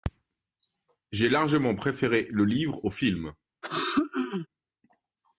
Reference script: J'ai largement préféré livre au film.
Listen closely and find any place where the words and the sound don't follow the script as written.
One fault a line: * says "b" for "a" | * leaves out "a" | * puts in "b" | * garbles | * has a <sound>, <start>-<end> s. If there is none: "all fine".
* puts in "le"
* has a throat clearing, 3.6-4.5 s